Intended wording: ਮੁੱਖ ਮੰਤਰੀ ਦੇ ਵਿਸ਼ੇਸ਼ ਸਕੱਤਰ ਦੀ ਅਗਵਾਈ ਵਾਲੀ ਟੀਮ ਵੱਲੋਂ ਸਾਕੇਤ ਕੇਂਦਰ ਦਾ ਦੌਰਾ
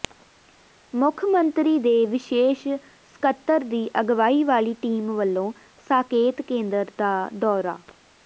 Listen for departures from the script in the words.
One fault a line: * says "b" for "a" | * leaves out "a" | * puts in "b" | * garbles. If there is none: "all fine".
all fine